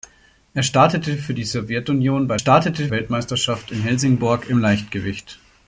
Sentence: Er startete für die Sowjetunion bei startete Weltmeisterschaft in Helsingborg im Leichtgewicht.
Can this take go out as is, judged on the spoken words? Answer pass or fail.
pass